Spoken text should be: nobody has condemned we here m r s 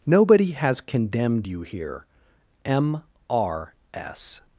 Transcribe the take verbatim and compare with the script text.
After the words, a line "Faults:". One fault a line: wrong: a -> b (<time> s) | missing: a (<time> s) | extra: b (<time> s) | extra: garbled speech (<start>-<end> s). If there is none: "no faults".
nobody has condemned you here m r s
Faults:
wrong: we -> you (1.5 s)